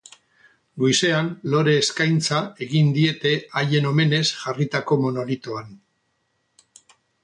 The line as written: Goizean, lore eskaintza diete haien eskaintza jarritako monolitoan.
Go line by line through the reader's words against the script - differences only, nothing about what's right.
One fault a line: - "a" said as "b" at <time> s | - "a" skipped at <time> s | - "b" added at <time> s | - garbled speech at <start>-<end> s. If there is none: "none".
- "egin" added at 2.7 s
- "eskaintza" said as "omenez" at 3.9 s